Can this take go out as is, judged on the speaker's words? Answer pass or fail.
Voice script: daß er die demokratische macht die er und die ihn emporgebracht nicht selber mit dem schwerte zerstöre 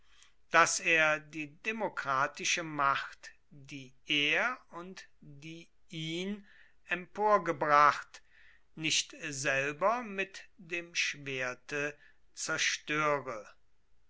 pass